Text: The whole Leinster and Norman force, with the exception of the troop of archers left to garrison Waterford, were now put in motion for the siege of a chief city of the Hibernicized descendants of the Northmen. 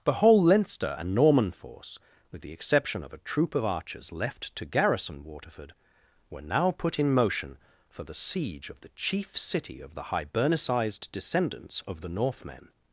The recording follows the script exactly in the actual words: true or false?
false